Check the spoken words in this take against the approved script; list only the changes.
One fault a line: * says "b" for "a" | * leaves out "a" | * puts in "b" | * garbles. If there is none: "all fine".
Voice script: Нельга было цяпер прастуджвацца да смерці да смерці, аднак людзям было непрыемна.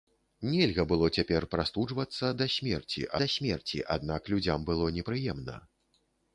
all fine